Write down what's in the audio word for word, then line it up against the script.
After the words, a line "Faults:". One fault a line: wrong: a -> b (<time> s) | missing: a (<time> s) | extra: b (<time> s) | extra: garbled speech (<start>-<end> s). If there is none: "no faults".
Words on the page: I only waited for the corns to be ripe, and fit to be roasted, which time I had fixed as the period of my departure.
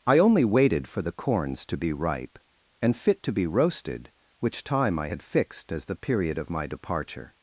I only waited for the corns to be ripe, and fit to be roasted, which time I had fixed as the period of my departure.
Faults:
no faults